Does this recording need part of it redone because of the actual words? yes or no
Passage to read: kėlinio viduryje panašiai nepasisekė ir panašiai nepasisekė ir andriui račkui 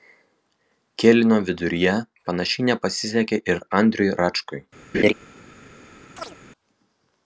yes